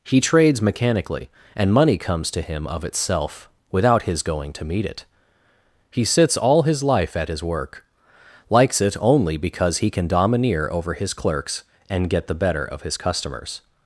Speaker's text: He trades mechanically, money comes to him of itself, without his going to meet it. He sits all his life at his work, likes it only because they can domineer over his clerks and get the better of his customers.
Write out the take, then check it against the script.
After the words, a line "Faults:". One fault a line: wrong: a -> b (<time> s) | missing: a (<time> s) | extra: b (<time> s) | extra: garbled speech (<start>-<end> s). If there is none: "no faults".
He trades mechanically, and money comes to him of itself, without his going to meet it. He sits all his life at his work, likes it only because he can domineer over his clerks and get the better of his customers.
Faults:
extra: and (1.6 s)
wrong: they -> he (9.8 s)